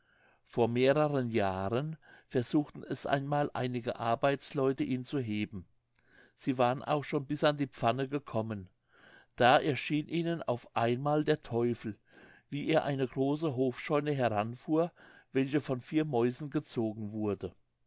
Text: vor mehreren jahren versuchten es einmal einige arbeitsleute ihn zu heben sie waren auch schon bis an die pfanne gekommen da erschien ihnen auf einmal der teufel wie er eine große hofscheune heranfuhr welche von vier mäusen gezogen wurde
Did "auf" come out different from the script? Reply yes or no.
no